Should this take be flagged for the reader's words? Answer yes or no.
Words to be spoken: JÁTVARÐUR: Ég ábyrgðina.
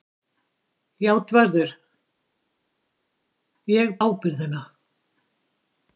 no